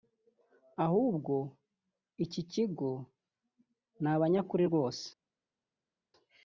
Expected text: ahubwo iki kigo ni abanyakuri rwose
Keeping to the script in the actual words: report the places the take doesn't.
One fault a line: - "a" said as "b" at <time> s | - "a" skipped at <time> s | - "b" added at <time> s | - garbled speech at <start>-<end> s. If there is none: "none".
none